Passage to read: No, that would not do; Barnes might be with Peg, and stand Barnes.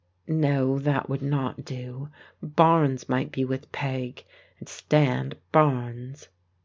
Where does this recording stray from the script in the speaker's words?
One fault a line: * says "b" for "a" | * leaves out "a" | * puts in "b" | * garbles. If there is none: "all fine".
all fine